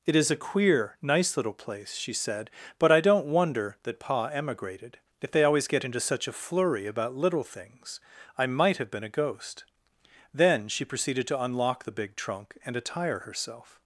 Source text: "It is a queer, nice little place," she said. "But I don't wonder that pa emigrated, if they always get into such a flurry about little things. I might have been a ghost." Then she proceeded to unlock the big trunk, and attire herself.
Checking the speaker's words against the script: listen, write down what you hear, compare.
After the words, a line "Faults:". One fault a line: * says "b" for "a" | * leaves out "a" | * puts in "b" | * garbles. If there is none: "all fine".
"It is a queer, nice little place," she said. "But I don't wonder that pa emigrated, if they always get into such a flurry about little things. I might have been a ghost." Then she proceeded to unlock the big trunk, and attire herself.
Faults:
all fine